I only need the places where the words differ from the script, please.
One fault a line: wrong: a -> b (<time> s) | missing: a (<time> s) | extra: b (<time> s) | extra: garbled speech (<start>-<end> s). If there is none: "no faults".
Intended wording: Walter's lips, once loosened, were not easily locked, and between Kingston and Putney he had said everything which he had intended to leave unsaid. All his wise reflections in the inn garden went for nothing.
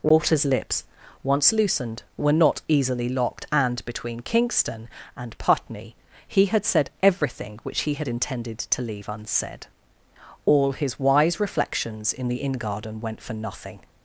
no faults